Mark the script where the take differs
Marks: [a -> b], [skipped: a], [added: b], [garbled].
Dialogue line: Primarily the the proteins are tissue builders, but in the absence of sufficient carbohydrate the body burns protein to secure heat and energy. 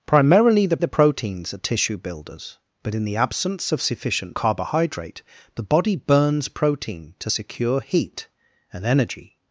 Primarily the the proteins are tissue builders, but in the absence of sufficient carbohydrate the body burns protein to secure heat and energy.